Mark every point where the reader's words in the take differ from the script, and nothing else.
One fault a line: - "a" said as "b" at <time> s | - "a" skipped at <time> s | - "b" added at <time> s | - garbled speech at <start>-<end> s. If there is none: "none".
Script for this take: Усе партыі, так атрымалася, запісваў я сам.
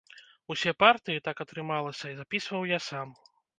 none